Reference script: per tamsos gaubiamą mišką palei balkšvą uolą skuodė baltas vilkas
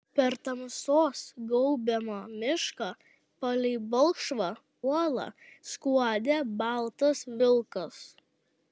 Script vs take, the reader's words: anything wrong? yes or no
no